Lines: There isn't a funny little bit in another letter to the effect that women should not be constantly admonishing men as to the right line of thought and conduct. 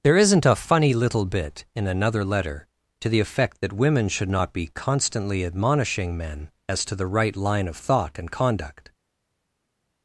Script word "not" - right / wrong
right